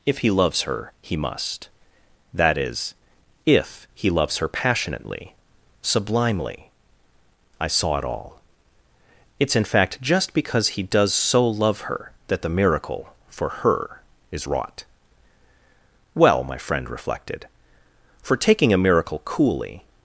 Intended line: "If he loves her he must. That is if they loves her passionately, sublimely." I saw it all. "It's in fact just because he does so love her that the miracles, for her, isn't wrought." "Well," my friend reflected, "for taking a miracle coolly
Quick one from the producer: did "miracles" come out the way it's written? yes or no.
no